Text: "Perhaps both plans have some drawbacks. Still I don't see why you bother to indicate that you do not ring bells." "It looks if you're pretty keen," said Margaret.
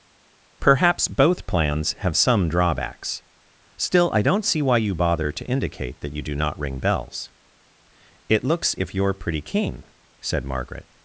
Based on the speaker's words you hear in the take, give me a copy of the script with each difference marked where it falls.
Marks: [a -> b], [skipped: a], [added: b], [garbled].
"Perhaps both plans have some drawbacks. Still I don't see why you bother to indicate that you do not ring bells." "It looks if you're pretty keen," said Margaret.